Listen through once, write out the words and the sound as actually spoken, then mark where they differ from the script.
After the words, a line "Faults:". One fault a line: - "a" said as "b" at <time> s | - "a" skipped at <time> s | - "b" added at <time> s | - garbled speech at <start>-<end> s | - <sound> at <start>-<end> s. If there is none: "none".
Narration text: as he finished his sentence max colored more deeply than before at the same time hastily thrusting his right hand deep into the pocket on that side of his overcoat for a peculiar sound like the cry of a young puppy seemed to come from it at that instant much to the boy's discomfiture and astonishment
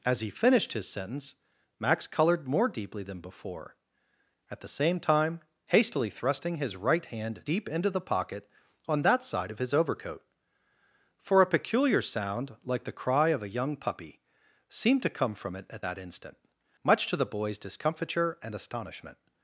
as he finished his sentence max colored more deeply than before at the same time hastily thrusting his right hand deep into the pocket on that side of his overcoat for a peculiar sound like the cry of a young puppy seemed to come from it at that instant much to the boy's discomfiture and astonishment
Faults:
none